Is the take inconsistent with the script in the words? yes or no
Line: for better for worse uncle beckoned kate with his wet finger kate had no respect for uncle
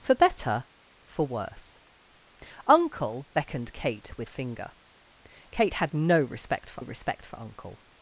yes